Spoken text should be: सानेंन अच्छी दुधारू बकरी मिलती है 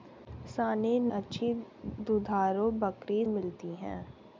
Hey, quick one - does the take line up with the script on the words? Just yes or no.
yes